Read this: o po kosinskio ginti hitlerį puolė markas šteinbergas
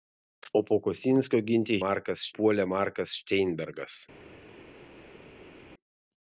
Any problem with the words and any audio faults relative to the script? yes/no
yes